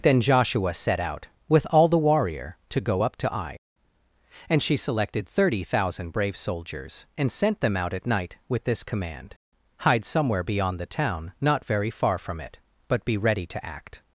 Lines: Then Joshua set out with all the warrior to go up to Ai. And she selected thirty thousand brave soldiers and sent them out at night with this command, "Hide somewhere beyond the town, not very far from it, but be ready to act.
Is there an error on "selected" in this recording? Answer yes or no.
no